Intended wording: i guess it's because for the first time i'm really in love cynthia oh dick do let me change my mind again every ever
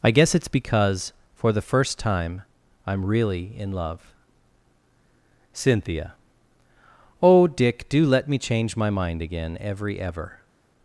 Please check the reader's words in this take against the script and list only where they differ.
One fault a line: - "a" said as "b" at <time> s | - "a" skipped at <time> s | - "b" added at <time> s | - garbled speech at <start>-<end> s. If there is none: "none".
none